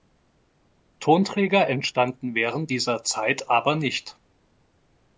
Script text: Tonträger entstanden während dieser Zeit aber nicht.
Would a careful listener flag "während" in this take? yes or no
no